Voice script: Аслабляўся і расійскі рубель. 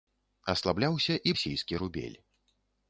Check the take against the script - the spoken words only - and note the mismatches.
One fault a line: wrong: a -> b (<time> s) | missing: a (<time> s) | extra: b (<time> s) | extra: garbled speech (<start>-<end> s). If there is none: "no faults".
no faults